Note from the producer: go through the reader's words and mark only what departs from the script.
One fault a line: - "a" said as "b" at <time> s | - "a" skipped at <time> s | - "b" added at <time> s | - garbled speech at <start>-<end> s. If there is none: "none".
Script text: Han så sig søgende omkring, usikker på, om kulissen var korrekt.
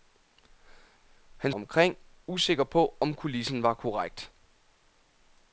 - "så sig søgende" skipped at 1.5 s